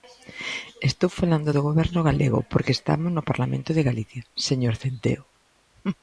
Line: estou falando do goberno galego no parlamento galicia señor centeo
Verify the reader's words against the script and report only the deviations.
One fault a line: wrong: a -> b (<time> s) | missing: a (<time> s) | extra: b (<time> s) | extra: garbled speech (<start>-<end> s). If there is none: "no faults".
extra: porque estamos (2.5 s)
extra: de (3.7 s)